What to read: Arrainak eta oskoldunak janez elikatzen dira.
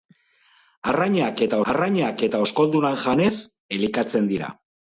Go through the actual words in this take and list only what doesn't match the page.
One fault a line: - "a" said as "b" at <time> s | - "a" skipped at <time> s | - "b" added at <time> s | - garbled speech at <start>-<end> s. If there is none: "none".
- "arrainak eta" added at 1.7 s